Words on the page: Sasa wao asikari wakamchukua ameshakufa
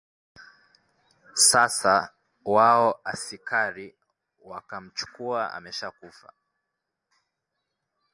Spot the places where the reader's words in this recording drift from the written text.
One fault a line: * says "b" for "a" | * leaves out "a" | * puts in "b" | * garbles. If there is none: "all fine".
all fine